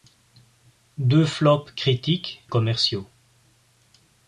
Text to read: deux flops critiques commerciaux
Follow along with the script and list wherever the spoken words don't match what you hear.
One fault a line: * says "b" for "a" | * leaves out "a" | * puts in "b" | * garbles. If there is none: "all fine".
all fine